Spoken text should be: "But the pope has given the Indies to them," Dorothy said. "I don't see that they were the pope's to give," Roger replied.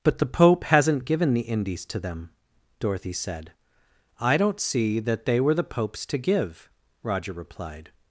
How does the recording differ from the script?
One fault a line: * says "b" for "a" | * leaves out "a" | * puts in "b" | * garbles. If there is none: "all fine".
* says "hasn't" for "has"